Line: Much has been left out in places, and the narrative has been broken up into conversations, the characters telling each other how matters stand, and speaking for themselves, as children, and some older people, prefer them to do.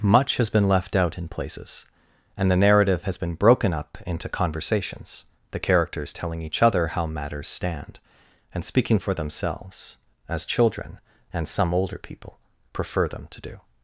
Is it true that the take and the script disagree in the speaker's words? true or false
false